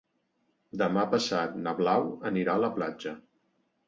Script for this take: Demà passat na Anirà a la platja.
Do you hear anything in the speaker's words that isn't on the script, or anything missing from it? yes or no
yes